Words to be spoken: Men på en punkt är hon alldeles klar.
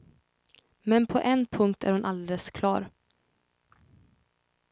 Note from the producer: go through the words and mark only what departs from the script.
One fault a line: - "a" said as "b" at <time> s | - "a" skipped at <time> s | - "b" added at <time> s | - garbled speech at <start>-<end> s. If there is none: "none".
none